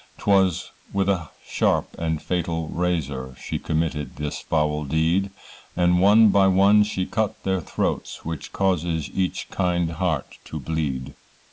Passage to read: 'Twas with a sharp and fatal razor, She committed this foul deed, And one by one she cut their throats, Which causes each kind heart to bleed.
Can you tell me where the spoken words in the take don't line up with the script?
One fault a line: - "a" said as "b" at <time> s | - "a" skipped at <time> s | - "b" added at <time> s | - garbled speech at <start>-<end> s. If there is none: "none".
none